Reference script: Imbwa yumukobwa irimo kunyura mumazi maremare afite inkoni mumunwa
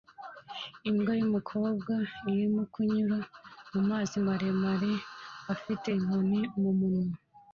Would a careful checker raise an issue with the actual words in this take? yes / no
no